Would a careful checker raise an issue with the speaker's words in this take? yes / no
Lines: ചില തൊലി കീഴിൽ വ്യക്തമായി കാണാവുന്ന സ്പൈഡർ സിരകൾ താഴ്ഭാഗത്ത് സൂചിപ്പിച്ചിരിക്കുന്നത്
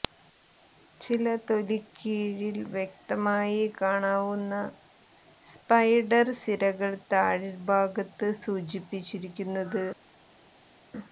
no